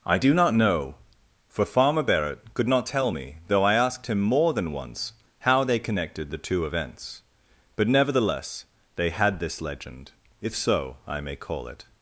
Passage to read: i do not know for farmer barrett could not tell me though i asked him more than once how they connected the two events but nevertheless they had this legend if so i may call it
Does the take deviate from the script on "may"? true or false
false